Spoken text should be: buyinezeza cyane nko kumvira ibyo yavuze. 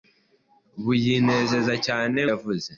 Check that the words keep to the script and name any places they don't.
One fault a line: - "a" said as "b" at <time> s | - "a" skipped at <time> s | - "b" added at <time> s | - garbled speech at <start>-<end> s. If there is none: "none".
- "nko kumvira ibyo" skipped at 2.2 s